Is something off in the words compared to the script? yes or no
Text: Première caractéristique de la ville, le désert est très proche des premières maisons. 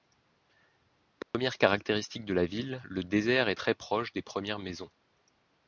no